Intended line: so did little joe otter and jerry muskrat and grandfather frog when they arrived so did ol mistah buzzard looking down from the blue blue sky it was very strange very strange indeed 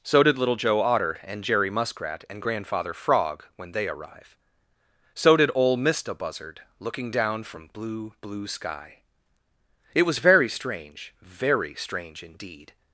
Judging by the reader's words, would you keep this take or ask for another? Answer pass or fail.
fail